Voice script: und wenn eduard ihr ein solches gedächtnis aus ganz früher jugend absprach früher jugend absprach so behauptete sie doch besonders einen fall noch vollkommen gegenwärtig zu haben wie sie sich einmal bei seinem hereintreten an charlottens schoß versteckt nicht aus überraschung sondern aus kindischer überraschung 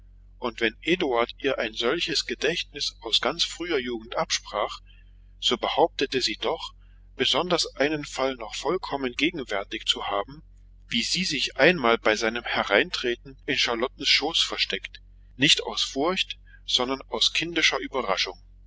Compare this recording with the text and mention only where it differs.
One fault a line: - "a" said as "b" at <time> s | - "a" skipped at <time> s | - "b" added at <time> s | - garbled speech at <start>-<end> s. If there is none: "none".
- "früher jugend absprach" skipped at 4.8 s
- "an" said as "in" at 13.4 s
- "überraschung" said as "furcht" at 15.8 s